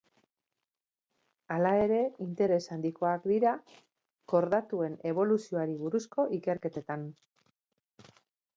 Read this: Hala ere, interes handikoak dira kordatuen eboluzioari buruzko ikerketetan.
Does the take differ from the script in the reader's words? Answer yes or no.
no